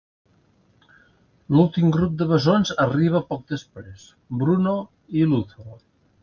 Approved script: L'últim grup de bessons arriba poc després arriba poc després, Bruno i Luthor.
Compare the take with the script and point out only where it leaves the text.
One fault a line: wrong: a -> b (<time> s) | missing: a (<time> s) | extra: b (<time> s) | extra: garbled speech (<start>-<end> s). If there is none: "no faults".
missing: arriba poc després (4.1 s)